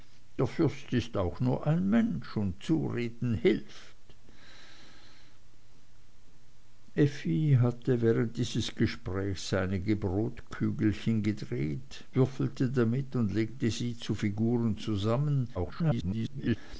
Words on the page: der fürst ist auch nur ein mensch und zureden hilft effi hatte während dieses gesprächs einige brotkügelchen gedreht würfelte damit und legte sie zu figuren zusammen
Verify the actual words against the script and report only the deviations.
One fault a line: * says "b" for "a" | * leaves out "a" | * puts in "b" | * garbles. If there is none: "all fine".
* garbles